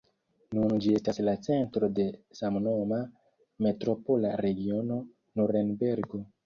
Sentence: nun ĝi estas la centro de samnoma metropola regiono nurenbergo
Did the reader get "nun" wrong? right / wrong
right